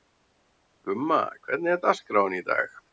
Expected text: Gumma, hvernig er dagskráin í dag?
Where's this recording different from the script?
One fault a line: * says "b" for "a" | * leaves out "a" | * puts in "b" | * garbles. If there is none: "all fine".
all fine